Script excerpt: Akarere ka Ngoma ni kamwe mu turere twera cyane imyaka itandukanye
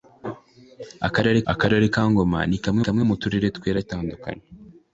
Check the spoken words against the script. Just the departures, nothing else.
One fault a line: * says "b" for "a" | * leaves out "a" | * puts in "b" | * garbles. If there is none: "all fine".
* puts in "akarere"
* puts in "kamwe"
* leaves out "cyane imyaka"